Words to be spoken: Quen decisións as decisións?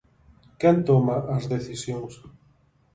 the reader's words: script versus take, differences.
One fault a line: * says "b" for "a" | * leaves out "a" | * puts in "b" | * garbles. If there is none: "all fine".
* says "toma" for "decisións"